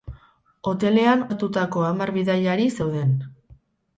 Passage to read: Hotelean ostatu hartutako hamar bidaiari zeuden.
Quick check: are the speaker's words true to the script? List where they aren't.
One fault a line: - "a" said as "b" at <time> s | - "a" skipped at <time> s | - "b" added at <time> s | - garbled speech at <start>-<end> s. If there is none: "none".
- "ostatu" skipped at 1.2 s